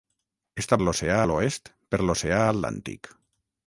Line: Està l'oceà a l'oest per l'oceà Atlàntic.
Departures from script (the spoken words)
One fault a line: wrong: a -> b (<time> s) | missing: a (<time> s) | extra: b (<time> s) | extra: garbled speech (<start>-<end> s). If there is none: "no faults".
no faults